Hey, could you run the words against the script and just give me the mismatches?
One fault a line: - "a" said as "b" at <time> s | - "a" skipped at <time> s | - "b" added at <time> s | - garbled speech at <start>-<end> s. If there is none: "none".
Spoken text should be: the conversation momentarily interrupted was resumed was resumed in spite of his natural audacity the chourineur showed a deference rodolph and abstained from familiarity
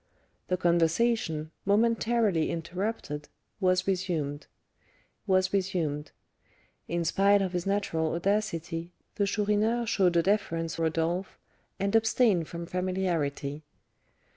none